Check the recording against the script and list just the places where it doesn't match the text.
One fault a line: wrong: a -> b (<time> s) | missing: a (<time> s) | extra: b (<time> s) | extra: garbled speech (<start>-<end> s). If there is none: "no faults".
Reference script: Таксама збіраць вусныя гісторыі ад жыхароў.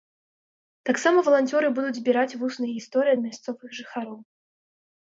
extra: валанцёры будуць (1.3 s)
extra: мясцовых (3.3 s)